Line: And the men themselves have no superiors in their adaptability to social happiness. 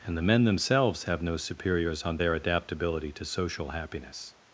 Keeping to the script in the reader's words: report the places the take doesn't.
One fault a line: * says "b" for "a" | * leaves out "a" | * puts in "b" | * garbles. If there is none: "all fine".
* says "on" for "in"